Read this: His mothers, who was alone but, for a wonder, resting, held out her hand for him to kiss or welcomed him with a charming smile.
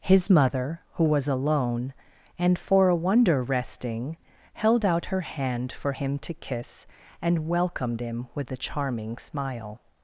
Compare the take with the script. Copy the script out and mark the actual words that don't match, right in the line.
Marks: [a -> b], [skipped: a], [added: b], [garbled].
His [mothers, -> mother] who was alone [but, -> and] for a wonder, resting, held out her hand for him to kiss [or -> and] welcomed him with a charming smile.